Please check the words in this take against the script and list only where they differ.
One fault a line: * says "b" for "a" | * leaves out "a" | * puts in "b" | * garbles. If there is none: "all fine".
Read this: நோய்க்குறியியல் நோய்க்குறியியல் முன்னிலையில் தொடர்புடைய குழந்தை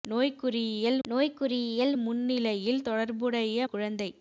all fine